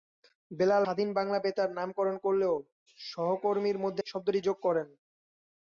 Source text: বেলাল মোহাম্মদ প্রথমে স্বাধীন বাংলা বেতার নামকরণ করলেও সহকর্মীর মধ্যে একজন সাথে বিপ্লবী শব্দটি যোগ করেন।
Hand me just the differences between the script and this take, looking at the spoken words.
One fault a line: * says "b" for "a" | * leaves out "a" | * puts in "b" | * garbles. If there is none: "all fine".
* leaves out "মোহাম্মদ প্রথমে"
* leaves out "একজন সাথে বিপ্লবী"